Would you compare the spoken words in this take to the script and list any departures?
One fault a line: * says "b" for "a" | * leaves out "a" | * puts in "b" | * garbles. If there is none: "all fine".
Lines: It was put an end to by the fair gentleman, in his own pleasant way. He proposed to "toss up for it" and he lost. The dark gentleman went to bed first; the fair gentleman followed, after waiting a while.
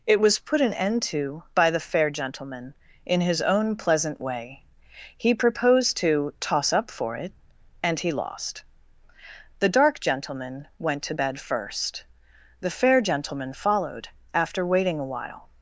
all fine